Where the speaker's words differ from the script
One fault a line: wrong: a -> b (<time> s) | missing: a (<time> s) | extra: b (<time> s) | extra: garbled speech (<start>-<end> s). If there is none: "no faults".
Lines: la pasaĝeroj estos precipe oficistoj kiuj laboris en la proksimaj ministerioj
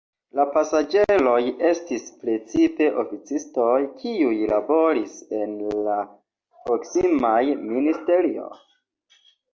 wrong: estos -> estis (1.7 s)